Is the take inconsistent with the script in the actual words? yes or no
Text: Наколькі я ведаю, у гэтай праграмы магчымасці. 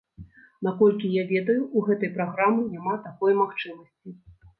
yes